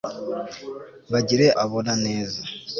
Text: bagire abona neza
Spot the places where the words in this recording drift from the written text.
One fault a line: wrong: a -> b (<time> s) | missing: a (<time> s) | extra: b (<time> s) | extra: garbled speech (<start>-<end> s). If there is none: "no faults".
no faults